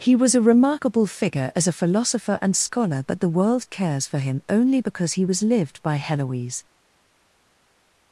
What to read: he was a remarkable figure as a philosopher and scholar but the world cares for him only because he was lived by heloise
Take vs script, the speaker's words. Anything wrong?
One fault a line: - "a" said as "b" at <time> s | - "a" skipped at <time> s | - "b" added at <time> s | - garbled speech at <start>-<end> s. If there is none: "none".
none